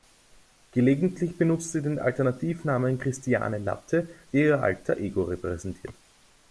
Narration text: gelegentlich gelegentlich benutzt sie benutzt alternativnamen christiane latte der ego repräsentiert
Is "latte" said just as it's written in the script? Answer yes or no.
yes